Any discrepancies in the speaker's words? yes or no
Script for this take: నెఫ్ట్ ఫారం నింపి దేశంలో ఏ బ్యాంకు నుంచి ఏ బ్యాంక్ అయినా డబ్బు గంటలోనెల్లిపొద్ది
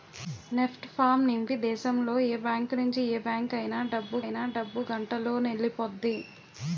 yes